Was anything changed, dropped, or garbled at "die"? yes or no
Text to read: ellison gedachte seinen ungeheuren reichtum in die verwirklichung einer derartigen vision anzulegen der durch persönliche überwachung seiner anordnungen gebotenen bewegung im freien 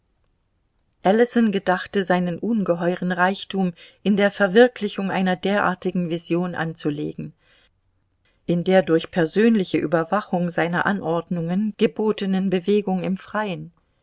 yes